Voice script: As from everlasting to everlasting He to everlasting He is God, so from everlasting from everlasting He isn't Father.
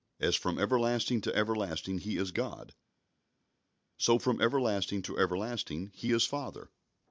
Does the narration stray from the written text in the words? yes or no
yes